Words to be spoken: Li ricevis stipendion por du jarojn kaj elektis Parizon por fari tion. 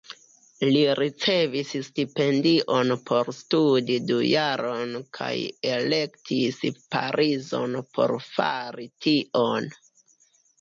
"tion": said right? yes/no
yes